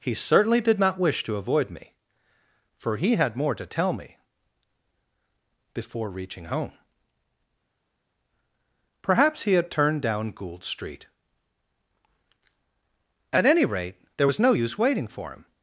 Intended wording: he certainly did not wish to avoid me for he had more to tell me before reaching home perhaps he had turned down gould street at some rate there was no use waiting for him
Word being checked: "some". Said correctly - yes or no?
no